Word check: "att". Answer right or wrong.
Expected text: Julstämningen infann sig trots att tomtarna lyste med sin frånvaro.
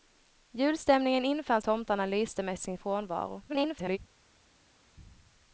wrong